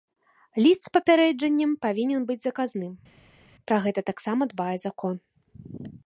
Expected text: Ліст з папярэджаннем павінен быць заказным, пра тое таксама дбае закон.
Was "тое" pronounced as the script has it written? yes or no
no